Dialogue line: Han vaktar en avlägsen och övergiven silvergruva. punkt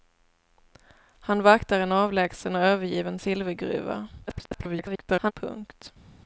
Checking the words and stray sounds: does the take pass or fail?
fail